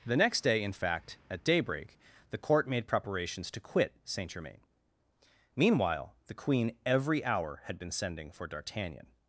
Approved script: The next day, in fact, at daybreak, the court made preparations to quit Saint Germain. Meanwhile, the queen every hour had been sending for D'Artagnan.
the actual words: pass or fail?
pass